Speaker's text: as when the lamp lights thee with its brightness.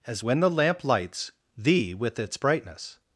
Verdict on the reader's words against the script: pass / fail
pass